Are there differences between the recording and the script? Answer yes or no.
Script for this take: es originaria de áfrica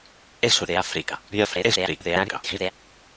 yes